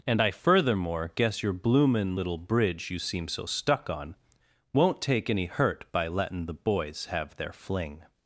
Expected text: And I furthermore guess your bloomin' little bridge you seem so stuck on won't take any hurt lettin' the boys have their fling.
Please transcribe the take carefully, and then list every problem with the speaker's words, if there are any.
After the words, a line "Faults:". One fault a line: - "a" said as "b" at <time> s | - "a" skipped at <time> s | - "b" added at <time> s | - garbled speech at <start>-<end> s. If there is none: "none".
And I furthermore guess your bloomin' little bridge you seem so stuck on won't take any hurt by lettin' the boys have their fling.
Faults:
- "by" added at 5.9 s